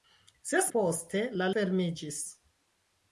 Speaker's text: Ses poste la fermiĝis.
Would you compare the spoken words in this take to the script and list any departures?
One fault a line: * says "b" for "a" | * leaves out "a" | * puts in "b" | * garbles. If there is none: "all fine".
all fine